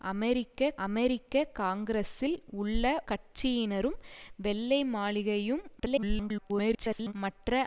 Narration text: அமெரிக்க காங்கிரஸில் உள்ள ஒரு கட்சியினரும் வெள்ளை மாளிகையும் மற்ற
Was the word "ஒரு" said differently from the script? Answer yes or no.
yes